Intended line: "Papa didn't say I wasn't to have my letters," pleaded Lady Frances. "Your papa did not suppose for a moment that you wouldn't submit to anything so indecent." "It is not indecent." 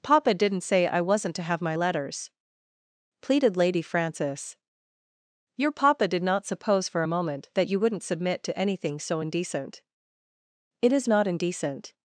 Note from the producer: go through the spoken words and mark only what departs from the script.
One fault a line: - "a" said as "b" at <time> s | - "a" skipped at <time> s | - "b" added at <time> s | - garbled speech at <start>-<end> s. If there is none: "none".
none